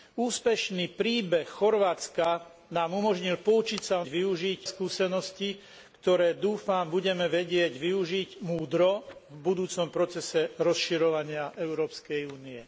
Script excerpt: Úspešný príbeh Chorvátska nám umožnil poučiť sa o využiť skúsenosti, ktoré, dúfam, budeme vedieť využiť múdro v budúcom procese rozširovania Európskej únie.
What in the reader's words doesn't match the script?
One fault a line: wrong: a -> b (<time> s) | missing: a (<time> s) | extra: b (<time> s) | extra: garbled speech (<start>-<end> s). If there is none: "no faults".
no faults